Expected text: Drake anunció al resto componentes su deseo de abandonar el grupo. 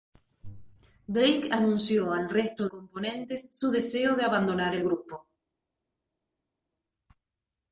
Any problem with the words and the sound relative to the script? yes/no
no